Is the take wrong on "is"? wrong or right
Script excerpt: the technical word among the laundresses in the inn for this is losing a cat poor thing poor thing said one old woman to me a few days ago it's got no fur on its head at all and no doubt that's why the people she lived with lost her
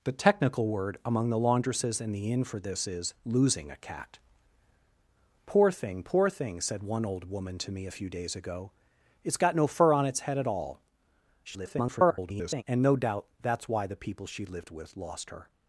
right